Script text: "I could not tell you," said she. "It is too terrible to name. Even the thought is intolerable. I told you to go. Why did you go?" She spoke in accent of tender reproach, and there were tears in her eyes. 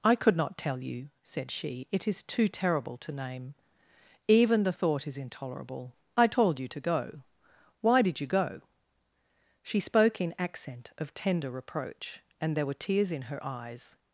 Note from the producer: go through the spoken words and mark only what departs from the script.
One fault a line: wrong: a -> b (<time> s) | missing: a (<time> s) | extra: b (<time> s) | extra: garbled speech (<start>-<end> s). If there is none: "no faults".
no faults